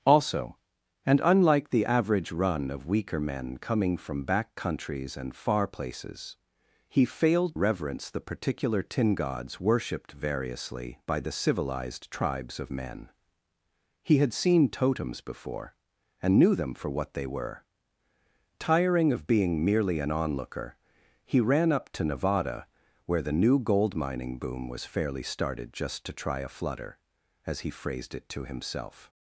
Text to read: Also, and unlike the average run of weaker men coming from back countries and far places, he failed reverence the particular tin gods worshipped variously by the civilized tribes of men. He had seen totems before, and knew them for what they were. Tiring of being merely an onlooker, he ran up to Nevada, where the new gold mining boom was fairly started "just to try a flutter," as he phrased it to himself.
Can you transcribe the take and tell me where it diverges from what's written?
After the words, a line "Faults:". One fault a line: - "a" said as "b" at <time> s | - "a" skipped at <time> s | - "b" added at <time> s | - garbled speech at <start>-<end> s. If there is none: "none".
Also, and unlike the average run of weaker men coming from back countries and far places, he failed reverence the particular tin gods worshipped variously by the civilized tribes of men. He had seen totems before, and knew them for what they were. Tiring of being merely an onlooker, he ran up to Nevada, where the new gold mining boom was fairly started "just to try a flutter," as he phrased it to himself.
Faults:
none